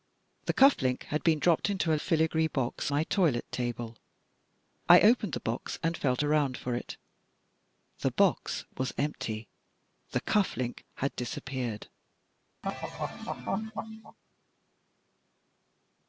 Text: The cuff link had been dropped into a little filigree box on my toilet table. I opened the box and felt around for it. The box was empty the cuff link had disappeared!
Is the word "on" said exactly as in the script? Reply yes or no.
no